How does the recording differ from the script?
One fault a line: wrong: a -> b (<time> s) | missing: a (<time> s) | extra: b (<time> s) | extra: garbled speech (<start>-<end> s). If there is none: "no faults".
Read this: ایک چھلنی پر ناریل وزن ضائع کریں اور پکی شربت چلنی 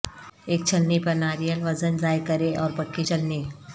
missing: شربت (3.0 s)